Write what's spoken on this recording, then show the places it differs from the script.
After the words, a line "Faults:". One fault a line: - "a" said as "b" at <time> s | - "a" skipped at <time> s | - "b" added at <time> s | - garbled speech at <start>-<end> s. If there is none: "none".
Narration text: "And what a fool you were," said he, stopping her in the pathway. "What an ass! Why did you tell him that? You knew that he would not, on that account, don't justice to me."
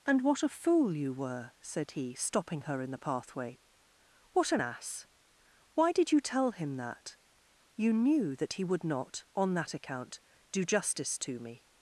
"And what a fool you were," said he, stopping her in the pathway. "What an ass! Why did you tell him that? You knew that he would not, on that account, do justice to me."
Faults:
- "don't" said as "do" at 10.5 s